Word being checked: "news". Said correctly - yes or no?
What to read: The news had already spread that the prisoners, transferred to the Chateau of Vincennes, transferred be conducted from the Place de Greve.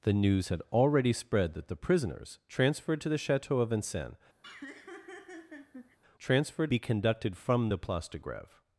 yes